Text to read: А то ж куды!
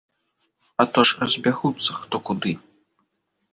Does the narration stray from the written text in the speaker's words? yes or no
yes